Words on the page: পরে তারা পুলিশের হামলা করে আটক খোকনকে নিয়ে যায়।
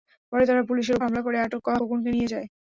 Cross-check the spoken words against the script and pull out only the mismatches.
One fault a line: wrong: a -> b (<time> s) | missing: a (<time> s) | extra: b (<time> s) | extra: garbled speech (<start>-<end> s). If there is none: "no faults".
no faults